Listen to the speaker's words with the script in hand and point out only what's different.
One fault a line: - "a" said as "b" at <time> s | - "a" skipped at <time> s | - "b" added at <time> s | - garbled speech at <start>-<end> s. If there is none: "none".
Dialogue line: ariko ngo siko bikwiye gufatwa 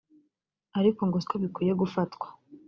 none